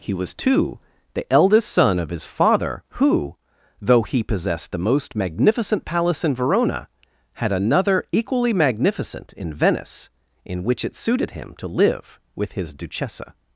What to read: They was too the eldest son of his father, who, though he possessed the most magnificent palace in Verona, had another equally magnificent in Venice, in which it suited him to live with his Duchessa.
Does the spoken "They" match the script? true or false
false